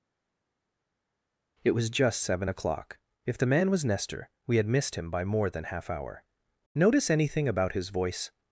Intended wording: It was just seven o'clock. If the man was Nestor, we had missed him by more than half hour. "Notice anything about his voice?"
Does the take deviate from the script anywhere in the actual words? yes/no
no